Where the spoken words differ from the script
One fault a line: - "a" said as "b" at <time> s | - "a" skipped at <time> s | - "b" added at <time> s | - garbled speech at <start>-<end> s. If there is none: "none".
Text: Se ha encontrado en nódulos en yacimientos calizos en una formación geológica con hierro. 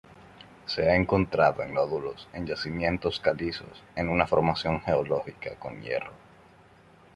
none